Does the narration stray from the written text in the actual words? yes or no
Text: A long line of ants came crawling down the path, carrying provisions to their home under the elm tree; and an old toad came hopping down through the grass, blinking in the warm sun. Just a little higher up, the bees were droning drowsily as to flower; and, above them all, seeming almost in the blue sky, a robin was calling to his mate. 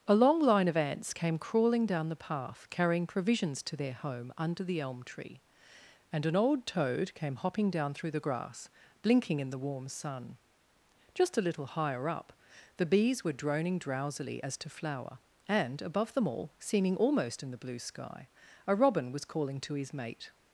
no